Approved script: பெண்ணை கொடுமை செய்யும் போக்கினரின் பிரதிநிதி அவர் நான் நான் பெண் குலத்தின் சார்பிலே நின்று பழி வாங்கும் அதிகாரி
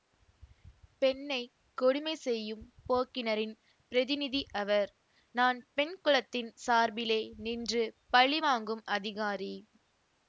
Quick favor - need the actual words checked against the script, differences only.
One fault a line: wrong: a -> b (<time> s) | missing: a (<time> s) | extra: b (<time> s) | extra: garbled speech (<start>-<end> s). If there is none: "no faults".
missing: நான் (5.6 s)